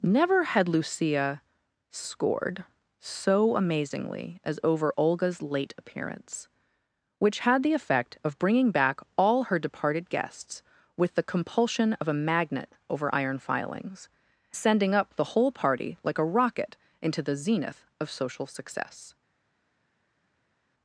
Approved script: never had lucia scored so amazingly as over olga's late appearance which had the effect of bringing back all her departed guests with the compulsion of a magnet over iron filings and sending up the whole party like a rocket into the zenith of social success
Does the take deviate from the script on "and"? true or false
true